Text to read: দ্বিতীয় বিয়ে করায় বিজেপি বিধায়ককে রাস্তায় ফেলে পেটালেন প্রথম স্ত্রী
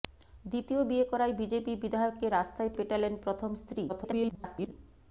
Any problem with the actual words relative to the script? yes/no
yes